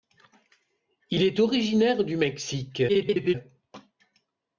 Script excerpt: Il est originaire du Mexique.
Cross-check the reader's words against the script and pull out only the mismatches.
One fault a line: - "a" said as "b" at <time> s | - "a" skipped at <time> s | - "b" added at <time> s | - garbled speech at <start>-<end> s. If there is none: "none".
- garbled speech at 2.9-3.3 s